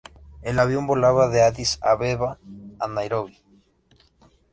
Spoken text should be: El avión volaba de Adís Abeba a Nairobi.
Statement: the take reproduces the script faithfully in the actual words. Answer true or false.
true